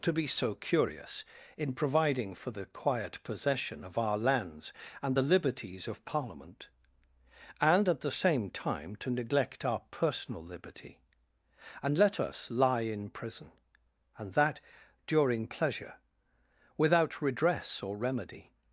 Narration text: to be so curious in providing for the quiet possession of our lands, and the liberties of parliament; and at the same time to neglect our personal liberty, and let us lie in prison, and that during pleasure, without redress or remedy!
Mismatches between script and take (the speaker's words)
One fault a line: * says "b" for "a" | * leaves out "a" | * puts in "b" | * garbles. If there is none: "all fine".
all fine